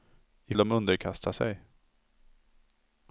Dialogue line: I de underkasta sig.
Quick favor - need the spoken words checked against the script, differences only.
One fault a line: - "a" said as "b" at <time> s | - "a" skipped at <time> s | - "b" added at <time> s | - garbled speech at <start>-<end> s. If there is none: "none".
none